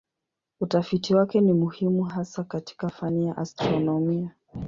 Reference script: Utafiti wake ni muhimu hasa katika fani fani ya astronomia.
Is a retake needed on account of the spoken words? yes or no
yes